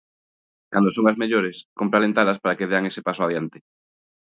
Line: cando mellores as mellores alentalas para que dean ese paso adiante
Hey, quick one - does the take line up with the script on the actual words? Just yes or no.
no